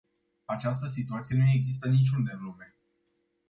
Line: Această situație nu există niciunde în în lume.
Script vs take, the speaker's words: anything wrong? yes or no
yes